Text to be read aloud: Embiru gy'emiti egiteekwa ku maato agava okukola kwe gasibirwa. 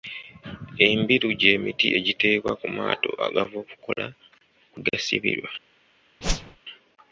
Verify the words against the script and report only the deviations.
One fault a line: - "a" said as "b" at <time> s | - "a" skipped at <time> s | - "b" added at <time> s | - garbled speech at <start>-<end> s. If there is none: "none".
none